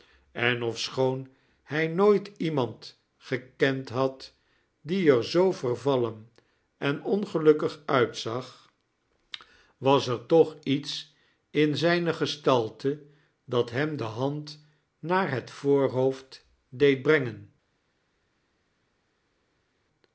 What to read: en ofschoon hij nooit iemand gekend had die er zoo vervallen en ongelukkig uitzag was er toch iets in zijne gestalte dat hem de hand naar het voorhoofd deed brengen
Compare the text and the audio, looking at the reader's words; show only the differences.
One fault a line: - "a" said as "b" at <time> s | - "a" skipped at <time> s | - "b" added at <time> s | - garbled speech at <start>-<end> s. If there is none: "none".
none